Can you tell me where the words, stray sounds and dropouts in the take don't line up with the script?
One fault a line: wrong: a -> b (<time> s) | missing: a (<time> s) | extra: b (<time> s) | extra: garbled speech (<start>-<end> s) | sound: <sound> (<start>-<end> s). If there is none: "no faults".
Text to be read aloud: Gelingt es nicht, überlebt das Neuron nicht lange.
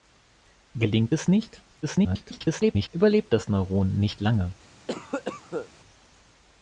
extra: garbled speech (1.8-2.9 s)
sound: cough (4.9-5.7 s)